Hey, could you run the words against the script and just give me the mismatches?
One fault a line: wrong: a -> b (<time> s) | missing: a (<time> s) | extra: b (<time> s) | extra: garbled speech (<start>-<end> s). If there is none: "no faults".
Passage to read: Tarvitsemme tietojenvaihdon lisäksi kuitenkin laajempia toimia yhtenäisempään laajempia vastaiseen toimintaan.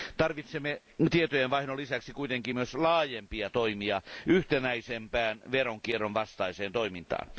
extra: myös (2.5 s)
wrong: laajempia -> veronkierron (5.5 s)